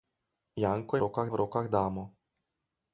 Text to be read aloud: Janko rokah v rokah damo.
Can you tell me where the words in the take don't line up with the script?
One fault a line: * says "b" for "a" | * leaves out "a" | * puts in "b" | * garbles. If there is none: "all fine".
all fine